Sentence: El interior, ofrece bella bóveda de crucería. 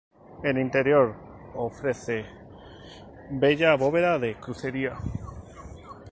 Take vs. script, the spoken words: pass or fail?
pass